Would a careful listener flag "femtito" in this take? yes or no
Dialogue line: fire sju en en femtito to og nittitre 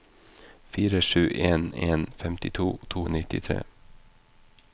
no